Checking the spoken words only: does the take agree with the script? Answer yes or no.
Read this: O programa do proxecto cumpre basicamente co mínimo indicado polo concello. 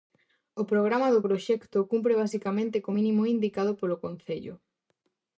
yes